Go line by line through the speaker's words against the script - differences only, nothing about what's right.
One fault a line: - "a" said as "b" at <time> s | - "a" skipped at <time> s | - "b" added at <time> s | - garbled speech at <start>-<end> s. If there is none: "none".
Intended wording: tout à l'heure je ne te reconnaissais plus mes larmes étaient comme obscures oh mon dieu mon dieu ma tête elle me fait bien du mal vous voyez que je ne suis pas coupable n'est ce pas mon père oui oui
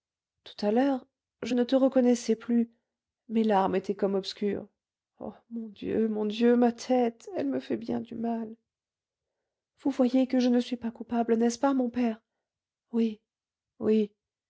none